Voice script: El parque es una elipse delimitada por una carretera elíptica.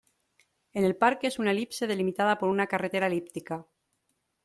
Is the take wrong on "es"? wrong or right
right